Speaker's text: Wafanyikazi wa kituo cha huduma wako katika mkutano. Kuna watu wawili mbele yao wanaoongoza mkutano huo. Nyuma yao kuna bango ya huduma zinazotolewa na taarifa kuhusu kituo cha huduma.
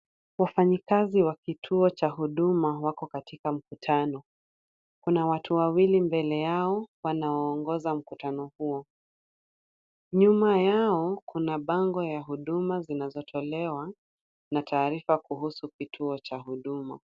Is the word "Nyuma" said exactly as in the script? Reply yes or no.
yes